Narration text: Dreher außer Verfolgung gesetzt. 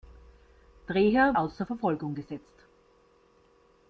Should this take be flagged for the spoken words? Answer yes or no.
no